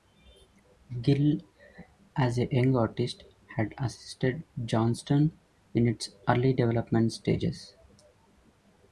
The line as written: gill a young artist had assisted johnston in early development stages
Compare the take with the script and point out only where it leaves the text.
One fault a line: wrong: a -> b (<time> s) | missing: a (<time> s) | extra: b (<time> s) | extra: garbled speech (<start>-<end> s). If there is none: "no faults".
extra: as (2.1 s)
extra: its (5.9 s)